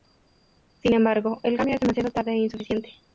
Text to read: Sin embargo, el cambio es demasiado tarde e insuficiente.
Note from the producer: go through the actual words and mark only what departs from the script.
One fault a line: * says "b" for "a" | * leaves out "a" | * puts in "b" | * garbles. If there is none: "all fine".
all fine